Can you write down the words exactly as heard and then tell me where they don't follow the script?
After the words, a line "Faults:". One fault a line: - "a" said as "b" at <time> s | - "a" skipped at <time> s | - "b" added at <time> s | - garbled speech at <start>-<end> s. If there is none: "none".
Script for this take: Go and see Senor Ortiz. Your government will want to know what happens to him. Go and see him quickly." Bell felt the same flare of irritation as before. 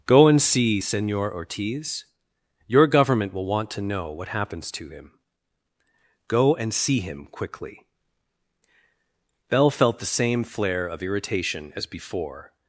Go and see Senor Ortiz. Your government will want to know what happens to him. Go and see him quickly." Bell felt the same flare of irritation as before.
Faults:
none